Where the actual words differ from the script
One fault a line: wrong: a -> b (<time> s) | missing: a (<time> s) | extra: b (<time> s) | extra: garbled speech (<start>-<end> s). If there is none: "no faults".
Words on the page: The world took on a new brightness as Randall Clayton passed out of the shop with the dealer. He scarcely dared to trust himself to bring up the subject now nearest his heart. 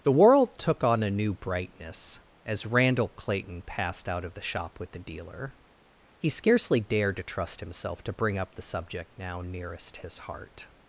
no faults